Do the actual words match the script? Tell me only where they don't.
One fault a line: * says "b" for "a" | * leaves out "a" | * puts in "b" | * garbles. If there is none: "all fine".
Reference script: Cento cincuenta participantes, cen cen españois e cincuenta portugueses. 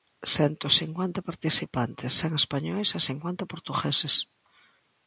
* leaves out "cen"